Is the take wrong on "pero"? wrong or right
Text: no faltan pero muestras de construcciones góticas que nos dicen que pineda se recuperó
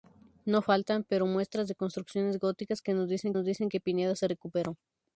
right